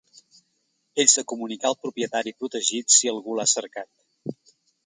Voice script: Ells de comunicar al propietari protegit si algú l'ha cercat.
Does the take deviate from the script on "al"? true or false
false